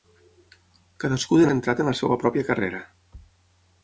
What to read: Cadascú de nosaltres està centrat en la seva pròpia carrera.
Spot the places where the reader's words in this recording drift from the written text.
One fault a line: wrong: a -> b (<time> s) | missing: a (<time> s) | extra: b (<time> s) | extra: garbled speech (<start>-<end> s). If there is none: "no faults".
missing: nosaltres està (1.5 s)